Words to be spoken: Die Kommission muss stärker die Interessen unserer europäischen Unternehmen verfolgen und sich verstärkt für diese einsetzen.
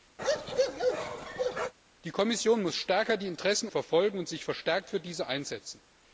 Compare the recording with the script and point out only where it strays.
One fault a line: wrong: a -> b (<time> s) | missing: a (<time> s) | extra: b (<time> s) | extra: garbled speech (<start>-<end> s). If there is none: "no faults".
missing: unserer europäischen Unternehmen (3.7 s)